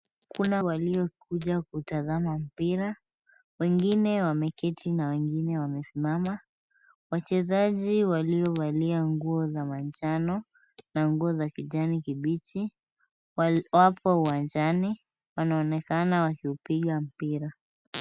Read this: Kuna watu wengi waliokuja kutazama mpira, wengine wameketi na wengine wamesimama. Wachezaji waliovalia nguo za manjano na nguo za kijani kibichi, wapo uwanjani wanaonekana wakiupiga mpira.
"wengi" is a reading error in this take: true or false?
true